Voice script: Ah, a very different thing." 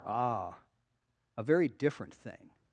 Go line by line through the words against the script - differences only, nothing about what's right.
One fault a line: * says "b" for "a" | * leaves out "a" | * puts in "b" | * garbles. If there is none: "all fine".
all fine